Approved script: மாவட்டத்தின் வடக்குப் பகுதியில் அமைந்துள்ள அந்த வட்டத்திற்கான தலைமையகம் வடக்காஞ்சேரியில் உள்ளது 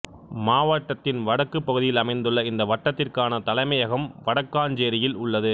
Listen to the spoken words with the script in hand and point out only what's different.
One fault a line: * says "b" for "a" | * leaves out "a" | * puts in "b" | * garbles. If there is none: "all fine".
* says "இந்த" for "அந்த"